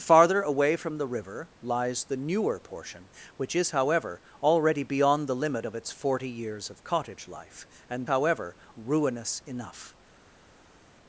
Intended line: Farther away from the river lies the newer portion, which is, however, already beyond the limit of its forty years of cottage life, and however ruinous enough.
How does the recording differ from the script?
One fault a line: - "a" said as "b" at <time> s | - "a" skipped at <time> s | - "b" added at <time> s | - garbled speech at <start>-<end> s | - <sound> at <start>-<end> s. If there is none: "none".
none